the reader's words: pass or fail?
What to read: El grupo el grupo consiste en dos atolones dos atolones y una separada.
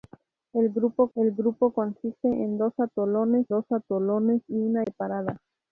pass